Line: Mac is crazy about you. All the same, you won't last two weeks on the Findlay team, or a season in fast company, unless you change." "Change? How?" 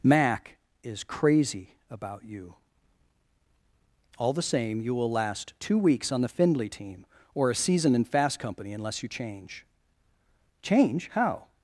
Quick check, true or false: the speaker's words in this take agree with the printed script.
false